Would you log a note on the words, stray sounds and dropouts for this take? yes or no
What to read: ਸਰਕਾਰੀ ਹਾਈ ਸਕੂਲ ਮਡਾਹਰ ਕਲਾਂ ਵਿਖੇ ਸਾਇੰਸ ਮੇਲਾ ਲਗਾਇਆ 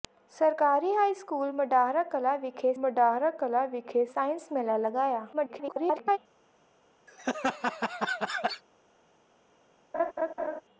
yes